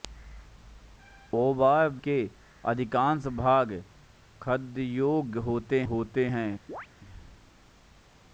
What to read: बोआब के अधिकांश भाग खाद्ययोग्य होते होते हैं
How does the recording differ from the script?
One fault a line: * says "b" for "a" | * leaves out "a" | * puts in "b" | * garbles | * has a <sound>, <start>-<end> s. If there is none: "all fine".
* has a chirp, 6.7-6.9 s